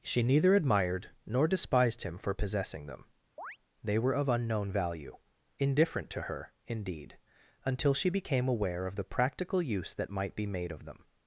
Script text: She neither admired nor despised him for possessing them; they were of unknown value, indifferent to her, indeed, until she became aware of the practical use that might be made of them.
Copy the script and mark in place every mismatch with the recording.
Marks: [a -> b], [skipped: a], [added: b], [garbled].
She neither admired nor despised him for possessing them; they were of unknown value, indifferent to her, indeed, until she became aware of the practical use that might be made of them.